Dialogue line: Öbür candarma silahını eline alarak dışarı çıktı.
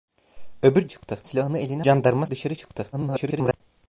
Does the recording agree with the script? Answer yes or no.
no